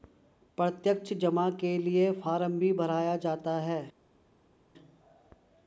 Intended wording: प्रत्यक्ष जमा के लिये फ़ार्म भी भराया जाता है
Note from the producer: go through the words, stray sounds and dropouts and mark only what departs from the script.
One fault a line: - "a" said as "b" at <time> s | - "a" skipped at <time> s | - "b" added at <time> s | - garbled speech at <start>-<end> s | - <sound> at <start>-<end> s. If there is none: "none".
none